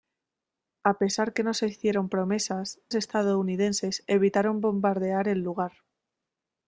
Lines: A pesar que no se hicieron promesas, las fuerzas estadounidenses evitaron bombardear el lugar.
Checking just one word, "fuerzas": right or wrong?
wrong